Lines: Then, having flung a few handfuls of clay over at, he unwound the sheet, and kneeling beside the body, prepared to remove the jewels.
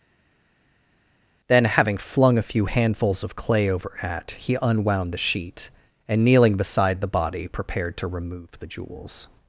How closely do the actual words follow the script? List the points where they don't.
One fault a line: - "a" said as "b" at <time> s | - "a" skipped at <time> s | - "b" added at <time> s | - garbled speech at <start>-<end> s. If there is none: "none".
none